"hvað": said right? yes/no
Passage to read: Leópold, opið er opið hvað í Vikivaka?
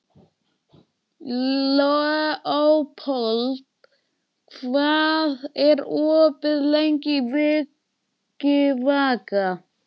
no